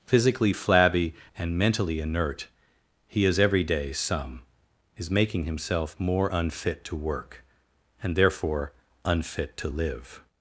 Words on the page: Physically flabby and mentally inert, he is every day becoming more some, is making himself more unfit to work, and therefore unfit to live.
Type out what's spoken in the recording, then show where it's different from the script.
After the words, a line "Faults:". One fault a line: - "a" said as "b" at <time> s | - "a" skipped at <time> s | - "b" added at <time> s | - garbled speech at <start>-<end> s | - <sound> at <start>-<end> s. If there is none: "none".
Physically flabby and mentally inert, he is every day some, is making himself more unfit to work, and therefore unfit to live.
Faults:
- "becoming more" skipped at 3.9 s